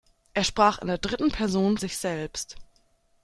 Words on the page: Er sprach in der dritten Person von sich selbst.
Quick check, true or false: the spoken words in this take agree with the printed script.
false